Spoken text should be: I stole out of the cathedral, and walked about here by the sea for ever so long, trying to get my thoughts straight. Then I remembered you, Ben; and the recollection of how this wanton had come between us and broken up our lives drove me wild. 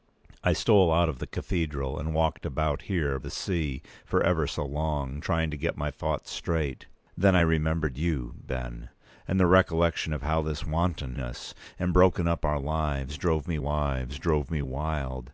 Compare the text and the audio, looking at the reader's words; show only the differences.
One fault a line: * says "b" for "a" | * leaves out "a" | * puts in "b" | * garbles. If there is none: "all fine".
* leaves out "by"
* leaves out "had come between"
* puts in "lives drove me"